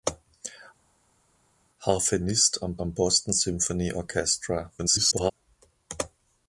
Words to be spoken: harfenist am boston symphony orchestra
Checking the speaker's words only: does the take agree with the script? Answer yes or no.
no